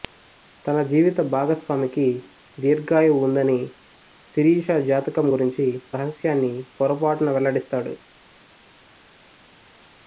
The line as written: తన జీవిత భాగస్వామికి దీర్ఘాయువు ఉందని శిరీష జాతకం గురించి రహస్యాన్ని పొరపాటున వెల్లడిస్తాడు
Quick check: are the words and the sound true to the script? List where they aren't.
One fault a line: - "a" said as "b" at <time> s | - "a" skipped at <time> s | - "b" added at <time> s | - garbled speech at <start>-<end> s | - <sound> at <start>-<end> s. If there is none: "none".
none